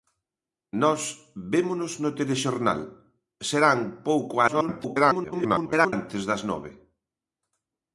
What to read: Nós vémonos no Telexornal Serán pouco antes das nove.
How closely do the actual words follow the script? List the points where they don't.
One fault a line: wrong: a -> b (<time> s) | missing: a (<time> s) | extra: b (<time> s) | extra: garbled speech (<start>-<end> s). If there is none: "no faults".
extra: garbled speech (4.5-5.9 s)